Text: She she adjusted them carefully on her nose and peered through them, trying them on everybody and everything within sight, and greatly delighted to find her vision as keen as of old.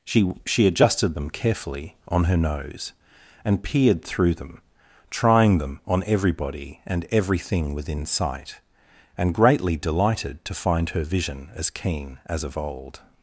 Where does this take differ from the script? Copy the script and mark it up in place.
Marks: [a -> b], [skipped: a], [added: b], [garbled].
She she adjusted them carefully on her nose and peered through them, trying them on everybody and everything within sight, and greatly delighted to find her vision as keen as of old.